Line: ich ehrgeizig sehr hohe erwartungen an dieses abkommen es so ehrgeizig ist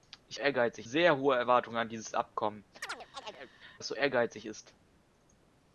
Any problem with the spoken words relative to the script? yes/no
no